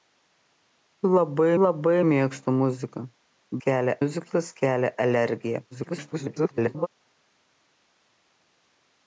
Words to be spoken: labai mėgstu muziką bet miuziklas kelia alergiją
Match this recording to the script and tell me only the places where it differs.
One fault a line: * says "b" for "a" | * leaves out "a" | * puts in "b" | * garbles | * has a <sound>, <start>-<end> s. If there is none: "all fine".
* puts in "labai"
* says "kelia" for "bet"
* garbles